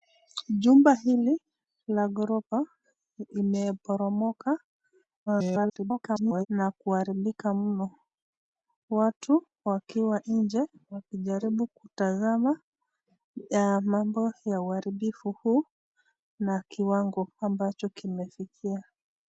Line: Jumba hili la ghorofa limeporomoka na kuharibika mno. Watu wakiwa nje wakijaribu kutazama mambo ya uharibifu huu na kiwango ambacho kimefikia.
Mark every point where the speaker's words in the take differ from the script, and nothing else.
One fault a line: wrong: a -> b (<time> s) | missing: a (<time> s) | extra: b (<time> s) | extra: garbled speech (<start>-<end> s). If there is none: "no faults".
extra: garbled speech (5.3-6.5 s)